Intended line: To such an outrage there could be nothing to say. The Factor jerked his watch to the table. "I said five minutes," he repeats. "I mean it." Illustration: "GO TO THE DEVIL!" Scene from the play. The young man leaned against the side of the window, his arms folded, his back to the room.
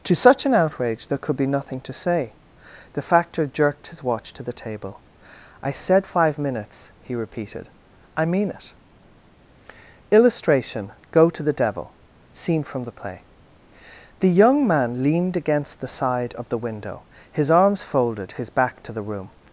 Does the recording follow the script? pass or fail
fail